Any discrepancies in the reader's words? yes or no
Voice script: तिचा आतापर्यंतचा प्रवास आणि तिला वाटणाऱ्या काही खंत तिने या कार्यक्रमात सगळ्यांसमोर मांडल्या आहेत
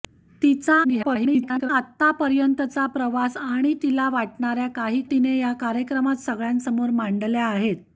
yes